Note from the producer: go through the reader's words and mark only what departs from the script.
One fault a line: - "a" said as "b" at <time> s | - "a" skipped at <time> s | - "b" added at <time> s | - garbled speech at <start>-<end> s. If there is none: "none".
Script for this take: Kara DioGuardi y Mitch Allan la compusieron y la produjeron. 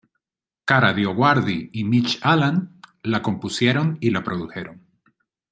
none